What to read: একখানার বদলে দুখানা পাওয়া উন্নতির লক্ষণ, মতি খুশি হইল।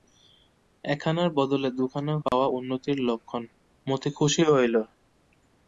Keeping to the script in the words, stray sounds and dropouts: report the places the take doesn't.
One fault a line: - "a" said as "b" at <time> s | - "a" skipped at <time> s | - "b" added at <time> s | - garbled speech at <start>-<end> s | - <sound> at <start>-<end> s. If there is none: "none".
- dropout at 2.3-2.3 s